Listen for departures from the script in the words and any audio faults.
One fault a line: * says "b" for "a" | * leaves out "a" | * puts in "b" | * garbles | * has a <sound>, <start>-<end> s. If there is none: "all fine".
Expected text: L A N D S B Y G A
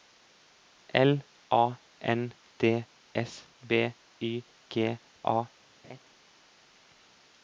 * has a laugh, 5.8-6.0 s